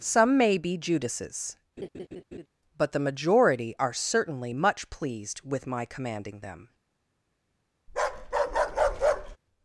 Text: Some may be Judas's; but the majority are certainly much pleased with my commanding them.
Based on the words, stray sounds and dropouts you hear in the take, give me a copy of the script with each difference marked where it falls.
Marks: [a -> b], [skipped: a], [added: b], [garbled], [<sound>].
Some may be Judas's; [laugh] but the majority are certainly much pleased with my commanding them. [bark]